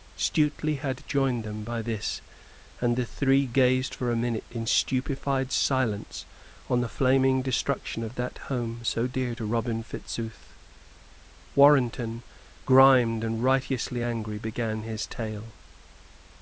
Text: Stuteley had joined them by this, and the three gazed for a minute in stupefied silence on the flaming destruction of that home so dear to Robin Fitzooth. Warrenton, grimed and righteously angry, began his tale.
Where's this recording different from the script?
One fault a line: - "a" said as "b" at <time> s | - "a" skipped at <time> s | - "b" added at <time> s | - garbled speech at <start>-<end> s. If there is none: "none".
none